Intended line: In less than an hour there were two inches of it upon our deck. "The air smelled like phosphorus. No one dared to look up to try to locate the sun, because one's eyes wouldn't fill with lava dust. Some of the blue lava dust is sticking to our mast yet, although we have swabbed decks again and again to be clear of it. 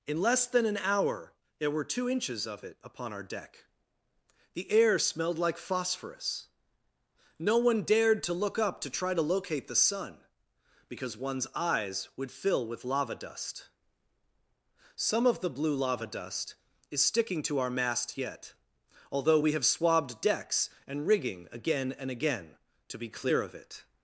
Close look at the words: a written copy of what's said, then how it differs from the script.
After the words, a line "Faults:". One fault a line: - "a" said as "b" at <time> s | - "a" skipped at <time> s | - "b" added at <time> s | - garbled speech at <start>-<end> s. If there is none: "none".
In less than an hour there were two inches of it upon our deck. "The air smelled like phosphorus. No one dared to look up to try to locate the sun, because one's eyes would fill with lava dust. Some of the blue lava dust is sticking to our mast yet, although we have swabbed decks and rigging again and again to be clear of it.
Faults:
- "wouldn't" said as "would" at 12.2 s
- "and rigging" added at 20.9 s